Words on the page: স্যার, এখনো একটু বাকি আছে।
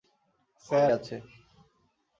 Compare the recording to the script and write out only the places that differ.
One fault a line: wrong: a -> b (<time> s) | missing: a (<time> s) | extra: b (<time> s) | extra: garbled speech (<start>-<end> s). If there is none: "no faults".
missing: এখনো একটু বাকি (0.9 s)